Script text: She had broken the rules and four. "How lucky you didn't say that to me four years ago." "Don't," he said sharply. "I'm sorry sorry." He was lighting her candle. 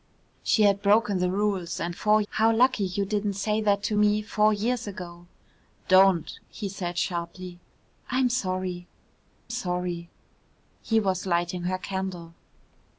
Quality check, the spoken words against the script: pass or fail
pass